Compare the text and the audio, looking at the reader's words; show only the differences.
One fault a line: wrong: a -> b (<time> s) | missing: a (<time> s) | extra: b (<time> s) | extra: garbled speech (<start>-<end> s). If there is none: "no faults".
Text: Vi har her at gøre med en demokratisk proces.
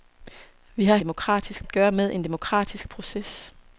wrong: her -> demokratisk (1.0 s)